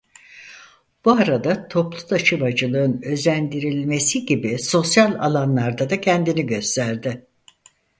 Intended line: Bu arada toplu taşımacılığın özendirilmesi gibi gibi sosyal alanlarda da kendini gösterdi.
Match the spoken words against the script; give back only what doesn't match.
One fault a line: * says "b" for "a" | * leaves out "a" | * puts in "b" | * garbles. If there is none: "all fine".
* leaves out "gibi"